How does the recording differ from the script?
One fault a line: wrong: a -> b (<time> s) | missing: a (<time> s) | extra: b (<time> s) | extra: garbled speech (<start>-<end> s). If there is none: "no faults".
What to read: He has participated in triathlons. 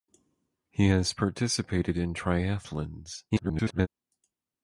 extra: garbled speech (3.3-3.9 s)